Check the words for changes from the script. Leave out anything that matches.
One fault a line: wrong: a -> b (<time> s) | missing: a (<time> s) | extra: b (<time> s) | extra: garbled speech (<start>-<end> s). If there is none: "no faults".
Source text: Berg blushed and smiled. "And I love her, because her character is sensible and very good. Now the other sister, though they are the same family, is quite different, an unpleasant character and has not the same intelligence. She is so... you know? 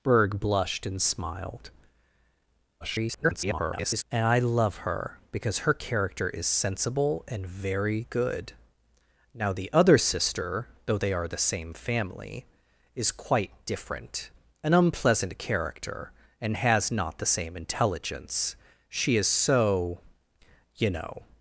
extra: garbled speech (2.8-4.0 s)